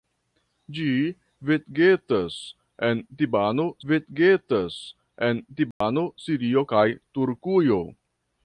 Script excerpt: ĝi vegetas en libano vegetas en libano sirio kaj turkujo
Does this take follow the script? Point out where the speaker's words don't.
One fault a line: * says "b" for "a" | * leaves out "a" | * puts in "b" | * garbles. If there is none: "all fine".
all fine